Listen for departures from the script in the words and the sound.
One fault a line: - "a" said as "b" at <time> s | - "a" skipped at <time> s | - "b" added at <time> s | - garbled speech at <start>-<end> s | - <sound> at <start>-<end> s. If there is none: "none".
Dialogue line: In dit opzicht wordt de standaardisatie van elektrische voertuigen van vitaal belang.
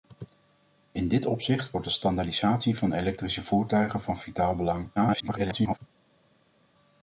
- garbled speech at 5.0-5.8 s